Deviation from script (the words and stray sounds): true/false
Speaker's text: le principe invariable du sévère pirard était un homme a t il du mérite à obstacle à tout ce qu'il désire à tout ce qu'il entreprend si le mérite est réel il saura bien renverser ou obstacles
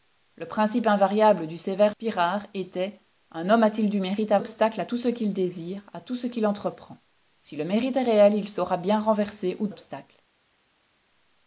false